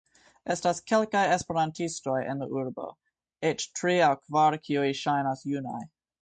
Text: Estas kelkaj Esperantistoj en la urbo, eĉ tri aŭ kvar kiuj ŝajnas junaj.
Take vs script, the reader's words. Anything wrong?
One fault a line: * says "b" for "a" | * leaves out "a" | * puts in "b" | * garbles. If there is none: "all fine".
all fine